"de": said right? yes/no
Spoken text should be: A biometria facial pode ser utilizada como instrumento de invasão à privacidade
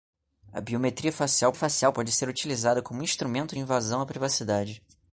no